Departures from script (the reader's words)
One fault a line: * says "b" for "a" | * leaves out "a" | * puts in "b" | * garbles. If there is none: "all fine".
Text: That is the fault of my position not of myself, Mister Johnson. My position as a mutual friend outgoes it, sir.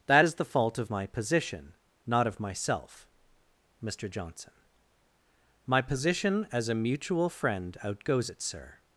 all fine